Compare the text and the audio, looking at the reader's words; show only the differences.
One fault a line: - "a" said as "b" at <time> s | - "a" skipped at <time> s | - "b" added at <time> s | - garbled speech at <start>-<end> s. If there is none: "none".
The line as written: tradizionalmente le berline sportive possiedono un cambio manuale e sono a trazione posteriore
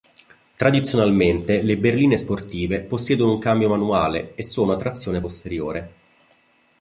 none